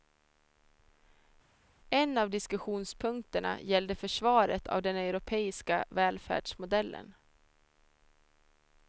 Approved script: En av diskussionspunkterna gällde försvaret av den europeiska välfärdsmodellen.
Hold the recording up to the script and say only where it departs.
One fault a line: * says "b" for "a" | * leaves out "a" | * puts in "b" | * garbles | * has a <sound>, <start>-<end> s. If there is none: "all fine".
all fine